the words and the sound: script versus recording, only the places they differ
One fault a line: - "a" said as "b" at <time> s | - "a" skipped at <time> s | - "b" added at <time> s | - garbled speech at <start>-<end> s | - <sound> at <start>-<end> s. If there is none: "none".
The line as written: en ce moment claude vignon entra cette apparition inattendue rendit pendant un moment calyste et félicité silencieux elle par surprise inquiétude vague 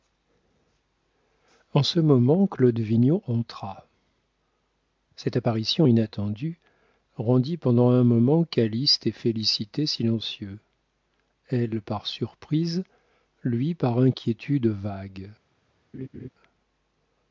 - "lui par" added at 13.4 s
- laugh at 15.9-16.3 s